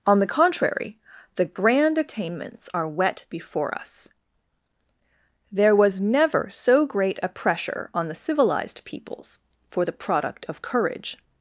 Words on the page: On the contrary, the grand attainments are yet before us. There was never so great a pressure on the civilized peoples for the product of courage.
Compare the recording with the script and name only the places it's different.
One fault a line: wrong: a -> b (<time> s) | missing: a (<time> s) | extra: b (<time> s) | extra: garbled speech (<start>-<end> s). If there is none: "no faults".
wrong: yet -> wet (2.9 s)